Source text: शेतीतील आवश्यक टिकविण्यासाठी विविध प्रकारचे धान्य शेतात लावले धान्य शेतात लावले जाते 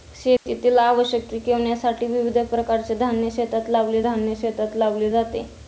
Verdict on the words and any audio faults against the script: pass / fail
fail